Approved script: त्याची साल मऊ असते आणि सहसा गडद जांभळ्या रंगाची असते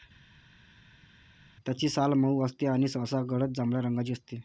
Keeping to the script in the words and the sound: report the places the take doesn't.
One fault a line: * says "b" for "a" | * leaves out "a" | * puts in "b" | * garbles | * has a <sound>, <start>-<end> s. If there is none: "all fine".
all fine